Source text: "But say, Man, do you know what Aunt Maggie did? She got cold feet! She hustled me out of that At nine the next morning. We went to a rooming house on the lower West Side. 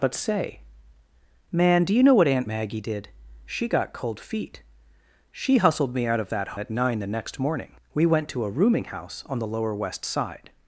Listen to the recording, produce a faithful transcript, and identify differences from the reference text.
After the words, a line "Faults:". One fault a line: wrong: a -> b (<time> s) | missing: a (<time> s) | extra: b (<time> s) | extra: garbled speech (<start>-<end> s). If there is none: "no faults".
"But say, Man, do you know what Aunt Maggie did? She got cold feet! She hustled me out of that At nine the next morning. We went to a rooming house on the lower West Side.
Faults:
no faults